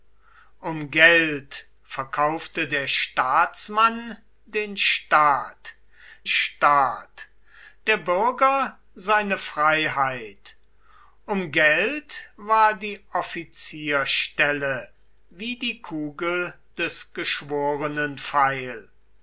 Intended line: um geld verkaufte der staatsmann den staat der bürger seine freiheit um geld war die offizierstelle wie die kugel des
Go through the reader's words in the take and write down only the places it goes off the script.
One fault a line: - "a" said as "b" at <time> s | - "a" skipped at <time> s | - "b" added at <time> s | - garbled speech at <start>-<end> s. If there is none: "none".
- "staat" added at 6.2 s